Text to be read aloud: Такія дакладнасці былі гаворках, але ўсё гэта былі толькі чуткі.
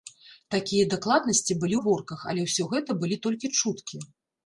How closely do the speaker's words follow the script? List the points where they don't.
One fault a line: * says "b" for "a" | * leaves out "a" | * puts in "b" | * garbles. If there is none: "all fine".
all fine